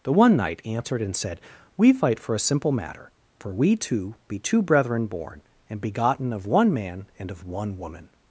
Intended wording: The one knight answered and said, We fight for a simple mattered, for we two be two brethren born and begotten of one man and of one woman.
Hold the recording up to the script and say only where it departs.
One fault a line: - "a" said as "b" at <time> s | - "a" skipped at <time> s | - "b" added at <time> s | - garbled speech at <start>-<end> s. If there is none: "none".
- "mattered" said as "matter" at 2.7 s